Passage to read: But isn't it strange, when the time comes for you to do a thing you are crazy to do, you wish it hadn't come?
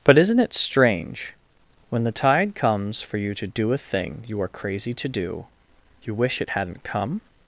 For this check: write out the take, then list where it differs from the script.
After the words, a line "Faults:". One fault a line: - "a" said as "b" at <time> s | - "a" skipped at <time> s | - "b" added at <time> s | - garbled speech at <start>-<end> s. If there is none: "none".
But isn't it strange, when the tide comes for you to do a thing you are crazy to do, you wish it hadn't come?
Faults:
- "time" said as "tide" at 2.1 s